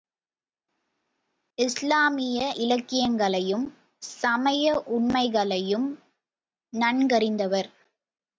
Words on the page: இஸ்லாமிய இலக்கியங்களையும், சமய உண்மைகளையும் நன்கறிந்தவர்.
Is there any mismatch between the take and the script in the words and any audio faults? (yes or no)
no